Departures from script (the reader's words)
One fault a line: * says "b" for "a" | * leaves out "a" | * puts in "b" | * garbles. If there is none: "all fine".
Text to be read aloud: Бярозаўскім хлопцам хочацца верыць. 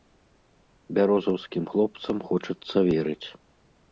all fine